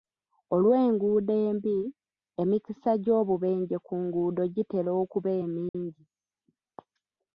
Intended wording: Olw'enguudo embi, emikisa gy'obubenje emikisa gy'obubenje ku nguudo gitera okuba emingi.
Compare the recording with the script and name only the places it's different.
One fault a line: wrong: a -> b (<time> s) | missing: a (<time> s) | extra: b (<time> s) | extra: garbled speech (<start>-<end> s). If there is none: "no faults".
missing: emikisa gy'obubenje (3.8 s)